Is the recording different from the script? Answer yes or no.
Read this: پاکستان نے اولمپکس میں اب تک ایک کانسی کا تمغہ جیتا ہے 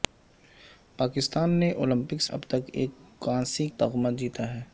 yes